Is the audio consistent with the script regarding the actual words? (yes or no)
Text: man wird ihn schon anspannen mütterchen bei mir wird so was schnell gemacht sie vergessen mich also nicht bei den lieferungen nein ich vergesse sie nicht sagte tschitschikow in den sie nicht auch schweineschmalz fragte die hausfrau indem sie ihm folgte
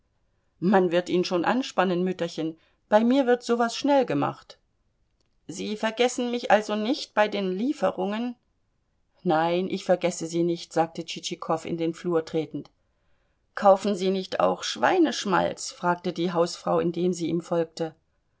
no